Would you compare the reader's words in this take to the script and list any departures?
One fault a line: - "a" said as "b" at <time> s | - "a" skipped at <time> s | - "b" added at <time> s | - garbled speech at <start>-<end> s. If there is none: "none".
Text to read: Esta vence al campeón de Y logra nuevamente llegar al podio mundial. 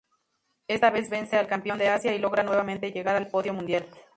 - "vez" added at 0.9 s
- "Asia" added at 1.9 s